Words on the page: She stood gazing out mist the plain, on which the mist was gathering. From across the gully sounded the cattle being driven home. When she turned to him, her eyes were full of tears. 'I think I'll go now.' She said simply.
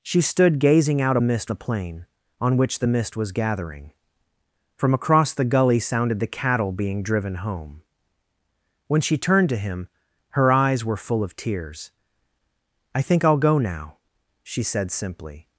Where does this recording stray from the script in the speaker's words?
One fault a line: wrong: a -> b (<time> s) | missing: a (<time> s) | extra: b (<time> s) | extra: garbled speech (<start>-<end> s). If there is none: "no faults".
no faults